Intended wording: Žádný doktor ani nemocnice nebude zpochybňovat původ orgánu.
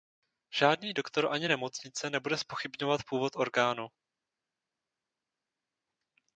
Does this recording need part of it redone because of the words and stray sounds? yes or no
no